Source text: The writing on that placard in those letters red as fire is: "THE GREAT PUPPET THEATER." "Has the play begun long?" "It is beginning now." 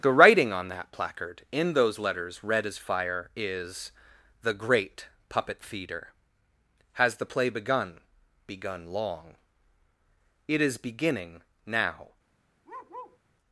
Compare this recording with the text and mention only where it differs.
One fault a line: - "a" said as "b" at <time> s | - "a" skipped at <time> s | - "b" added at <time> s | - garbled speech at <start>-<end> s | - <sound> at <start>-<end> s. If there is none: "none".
- "begun" added at 8.5 s
- bark at 12.6-13.2 s